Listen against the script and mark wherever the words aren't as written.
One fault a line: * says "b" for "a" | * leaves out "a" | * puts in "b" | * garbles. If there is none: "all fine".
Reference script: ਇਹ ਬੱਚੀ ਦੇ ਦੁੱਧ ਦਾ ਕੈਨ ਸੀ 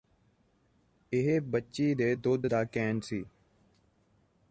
all fine